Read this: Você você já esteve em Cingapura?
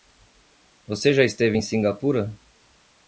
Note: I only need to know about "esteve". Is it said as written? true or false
true